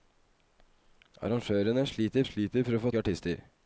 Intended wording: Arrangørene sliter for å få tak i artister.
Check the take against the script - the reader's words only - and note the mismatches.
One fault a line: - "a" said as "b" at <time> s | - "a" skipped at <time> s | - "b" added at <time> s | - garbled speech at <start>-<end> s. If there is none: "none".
- "sliter" added at 2.2 s
- "tak" skipped at 2.9 s